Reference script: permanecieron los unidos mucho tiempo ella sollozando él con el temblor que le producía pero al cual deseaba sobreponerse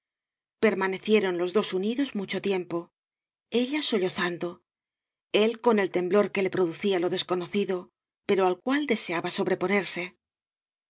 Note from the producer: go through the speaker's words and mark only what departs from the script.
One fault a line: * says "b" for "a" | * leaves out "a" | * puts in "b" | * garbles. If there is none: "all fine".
* puts in "dos"
* puts in "lo desconocido"